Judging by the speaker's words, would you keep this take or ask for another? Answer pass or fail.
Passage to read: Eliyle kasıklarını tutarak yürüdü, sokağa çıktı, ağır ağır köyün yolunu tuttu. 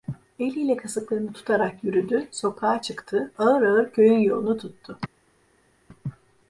pass